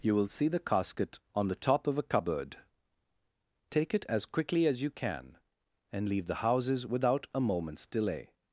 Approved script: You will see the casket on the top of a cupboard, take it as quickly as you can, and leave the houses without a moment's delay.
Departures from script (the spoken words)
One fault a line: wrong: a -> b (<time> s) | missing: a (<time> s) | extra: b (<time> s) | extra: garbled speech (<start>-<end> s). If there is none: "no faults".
no faults